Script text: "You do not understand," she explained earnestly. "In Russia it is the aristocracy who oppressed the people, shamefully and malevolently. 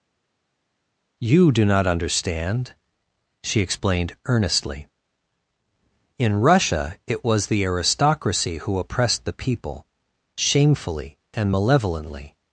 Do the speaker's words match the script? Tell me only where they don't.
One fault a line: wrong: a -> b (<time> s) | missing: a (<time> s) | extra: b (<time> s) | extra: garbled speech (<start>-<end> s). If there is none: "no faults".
wrong: is -> was (7.2 s)